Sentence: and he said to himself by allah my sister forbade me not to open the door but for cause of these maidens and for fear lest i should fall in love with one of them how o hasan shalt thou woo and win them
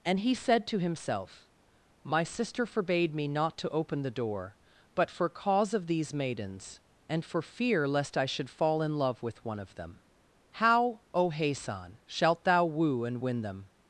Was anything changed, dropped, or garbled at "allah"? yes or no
yes